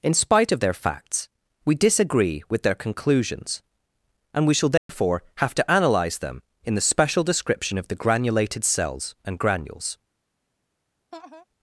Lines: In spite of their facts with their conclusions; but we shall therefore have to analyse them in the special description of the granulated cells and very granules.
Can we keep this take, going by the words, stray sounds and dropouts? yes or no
no